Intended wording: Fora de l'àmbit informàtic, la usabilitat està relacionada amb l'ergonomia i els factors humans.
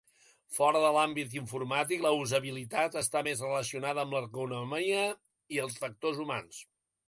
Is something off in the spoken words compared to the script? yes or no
yes